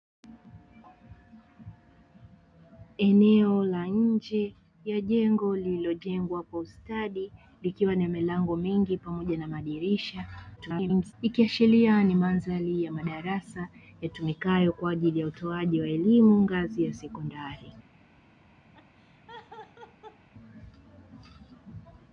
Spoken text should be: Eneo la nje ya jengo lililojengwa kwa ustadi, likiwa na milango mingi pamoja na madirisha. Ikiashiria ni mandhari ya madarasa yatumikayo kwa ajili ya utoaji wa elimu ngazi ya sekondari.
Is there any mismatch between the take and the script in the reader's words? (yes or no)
yes